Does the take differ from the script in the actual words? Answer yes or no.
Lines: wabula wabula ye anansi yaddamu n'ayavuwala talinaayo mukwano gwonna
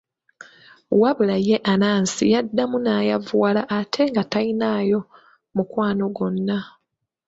yes